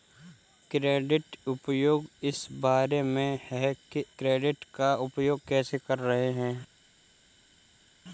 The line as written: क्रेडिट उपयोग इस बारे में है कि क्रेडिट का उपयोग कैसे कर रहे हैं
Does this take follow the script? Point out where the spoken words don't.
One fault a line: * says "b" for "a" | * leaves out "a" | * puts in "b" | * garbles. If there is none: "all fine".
all fine